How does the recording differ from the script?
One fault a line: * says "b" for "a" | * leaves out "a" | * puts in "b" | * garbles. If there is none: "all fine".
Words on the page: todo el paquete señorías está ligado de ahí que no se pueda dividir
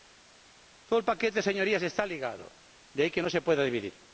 all fine